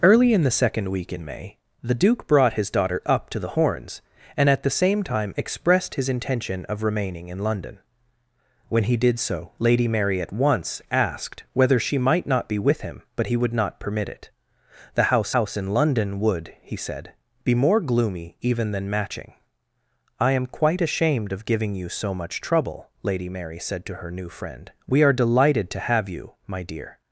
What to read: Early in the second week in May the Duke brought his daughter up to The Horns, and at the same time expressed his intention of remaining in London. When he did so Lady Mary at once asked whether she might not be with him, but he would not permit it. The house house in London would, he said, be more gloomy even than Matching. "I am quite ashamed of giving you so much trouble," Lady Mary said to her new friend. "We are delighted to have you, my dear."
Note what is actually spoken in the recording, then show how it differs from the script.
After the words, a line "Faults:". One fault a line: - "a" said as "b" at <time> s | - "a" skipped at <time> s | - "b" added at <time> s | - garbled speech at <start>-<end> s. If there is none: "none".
Early in the second week in May the Duke brought his daughter up to The Horns, and at the same time expressed his intention of remaining in London. When he did so Lady Mary at once asked whether she might not be with him, but he would not permit it. The house house in London would, he said, be more gloomy even than Matching. "I am quite ashamed of giving you so much trouble," Lady Mary said to her new friend. "We are delighted to have you, my dear."
Faults:
none